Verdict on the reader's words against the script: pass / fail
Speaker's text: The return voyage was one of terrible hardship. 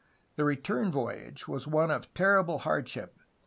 pass